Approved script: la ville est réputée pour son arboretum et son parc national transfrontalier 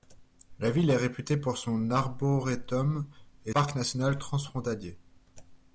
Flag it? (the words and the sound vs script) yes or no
yes